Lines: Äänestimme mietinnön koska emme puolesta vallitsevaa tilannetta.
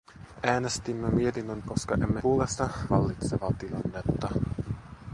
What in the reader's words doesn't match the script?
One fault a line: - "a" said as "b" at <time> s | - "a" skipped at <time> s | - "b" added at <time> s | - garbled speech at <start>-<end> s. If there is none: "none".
none